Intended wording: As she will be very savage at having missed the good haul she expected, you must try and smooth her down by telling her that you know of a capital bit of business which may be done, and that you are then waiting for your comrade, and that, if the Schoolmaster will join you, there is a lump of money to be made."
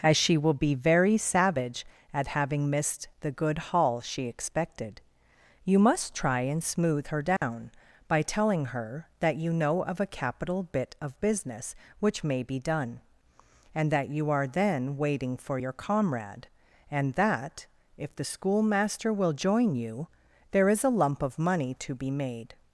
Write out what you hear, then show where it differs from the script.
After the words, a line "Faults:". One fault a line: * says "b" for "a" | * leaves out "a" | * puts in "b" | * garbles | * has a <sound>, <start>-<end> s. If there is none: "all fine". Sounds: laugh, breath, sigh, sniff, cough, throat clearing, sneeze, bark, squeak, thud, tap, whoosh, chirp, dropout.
As she will be very savage at having missed the good haul she expected, you must try and smooth her down by telling her that you know of a capital bit of business which may be done, and that you are then waiting for your comrade, and that, if the Schoolmaster will join you, there is a lump of money to be made."
Faults:
* has a dropout, 7.4-7.4 s